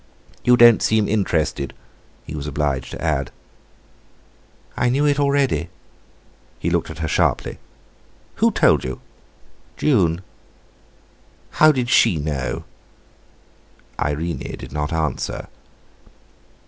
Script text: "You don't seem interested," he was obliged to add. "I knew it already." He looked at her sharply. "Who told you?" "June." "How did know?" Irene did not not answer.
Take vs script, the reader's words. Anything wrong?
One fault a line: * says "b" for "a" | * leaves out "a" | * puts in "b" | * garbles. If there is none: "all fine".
* puts in "she"
* leaves out "not"